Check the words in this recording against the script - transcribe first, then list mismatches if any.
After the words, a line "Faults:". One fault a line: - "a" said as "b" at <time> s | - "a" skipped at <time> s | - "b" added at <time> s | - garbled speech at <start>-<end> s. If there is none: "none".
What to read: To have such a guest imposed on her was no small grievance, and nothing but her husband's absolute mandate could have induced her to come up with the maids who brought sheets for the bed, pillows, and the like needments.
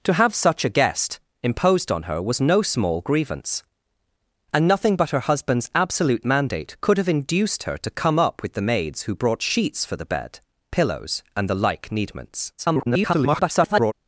To have such a guest imposed on her was no small grievance, and nothing but her husband's absolute mandate could have induced her to come up with the maids who brought sheets for the bed, pillows, and the like needments. [garbled]
Faults:
- garbled speech at 12.6-13.9 s